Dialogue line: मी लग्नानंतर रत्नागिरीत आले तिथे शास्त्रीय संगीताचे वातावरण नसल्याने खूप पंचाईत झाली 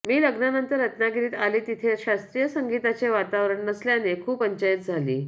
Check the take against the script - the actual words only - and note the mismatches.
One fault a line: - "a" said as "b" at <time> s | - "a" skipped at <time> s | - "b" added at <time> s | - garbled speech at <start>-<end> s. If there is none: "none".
none